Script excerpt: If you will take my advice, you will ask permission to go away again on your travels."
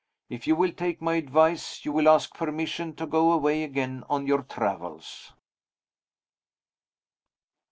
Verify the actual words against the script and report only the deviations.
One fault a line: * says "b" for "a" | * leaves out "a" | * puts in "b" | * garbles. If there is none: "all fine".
all fine